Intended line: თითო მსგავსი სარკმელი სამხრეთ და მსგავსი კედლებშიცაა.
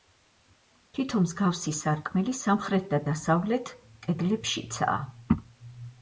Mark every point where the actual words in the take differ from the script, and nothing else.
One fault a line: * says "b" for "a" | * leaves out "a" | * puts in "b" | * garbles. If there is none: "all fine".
* says "დასავლეთ" for "მსგავსი"